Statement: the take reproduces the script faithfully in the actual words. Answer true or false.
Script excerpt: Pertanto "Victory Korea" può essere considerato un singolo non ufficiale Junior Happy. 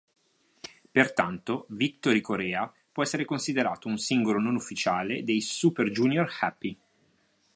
false